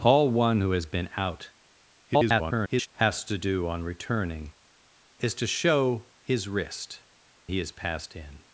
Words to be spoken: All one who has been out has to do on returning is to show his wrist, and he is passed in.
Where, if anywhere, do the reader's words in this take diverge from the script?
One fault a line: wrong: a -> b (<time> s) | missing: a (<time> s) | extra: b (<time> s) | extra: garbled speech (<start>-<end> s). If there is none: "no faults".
extra: garbled speech (2.0-2.9 s)
missing: and (7.0 s)